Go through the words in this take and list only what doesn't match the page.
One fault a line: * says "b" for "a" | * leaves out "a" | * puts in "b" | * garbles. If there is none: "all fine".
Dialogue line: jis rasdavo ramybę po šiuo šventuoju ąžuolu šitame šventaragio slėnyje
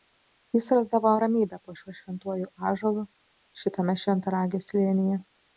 all fine